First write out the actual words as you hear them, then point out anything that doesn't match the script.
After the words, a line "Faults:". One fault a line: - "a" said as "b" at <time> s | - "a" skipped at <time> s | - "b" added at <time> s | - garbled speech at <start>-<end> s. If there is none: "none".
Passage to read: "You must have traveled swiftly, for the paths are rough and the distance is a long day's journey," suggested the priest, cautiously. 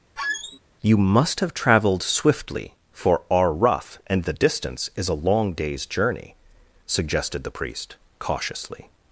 "You must have traveled swiftly, for are rough and the distance is a long day's journey," suggested the priest, cautiously.
Faults:
- "the paths" skipped at 3.2 s